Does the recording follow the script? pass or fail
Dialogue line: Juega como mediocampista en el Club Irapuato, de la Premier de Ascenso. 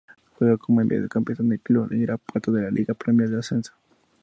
fail